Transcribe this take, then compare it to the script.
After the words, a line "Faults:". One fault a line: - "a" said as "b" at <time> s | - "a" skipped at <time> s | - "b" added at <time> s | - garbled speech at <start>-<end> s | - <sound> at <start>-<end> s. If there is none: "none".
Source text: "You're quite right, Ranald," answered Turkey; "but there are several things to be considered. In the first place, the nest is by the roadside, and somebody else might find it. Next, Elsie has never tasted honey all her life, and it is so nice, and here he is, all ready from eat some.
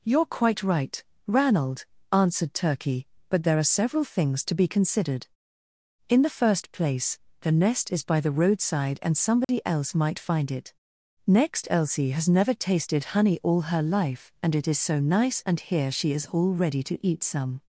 "You're quite right, Ranald," answered Turkey; "but there are several things to be considered. In the first place, the nest is by the roadside, and somebody else might find it. Next, Elsie has never tasted honey all her life, and it is so nice, and here she is, all ready to eat some.
Faults:
- dropout at 9.4-9.5 s
- "he" said as "she" at 15.9 s
- "from" said as "to" at 16.8 s